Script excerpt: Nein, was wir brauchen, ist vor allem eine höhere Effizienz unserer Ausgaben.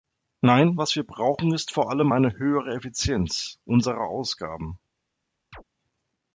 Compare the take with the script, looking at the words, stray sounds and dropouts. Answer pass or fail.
fail